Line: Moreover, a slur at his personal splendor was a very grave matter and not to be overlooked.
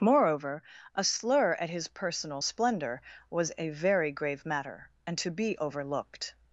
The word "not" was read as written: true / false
false